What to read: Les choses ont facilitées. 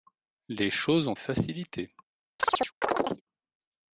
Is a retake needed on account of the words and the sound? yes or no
yes